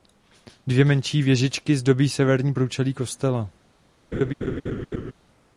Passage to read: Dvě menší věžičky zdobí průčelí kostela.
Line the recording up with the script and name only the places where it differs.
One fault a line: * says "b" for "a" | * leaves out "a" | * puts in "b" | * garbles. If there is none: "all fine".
* puts in "severní"